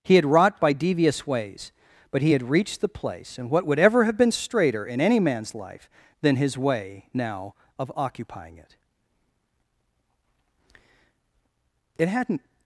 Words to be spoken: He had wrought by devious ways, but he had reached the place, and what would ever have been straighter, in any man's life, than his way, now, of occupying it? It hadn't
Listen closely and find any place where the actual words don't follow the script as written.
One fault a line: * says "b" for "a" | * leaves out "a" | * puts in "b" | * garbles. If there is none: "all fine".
all fine